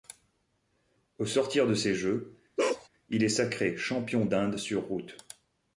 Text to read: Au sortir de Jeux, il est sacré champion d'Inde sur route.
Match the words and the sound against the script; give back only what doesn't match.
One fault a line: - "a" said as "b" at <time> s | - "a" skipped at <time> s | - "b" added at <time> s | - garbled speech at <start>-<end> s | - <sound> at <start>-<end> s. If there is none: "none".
- "ces" added at 1.8 s
- bark at 2.6-2.9 s